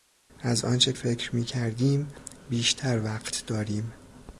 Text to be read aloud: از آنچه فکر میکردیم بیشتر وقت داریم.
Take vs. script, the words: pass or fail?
pass